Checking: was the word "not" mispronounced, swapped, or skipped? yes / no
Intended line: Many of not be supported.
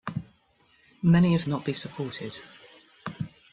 no